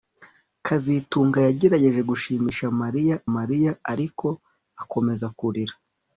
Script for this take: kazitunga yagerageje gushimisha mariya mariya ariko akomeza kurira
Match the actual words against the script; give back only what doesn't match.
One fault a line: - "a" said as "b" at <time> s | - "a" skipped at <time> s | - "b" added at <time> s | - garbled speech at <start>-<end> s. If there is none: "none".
none